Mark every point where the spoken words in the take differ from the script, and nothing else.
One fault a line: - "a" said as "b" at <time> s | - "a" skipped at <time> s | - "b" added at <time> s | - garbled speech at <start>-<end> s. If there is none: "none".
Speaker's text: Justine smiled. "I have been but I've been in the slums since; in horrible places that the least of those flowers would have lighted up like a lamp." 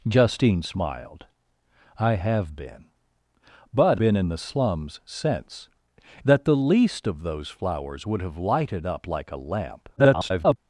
- "I've" skipped at 4.0 s
- "in horrible places" skipped at 5.7 s
- garbled speech at 10.0-10.6 s